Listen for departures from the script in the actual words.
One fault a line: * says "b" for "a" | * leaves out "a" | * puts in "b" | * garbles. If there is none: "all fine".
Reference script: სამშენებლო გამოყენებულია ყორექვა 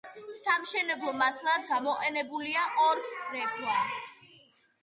* puts in "მასალად"